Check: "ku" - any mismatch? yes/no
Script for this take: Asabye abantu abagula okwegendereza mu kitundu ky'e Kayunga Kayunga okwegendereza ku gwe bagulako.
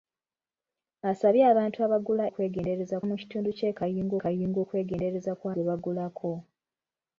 no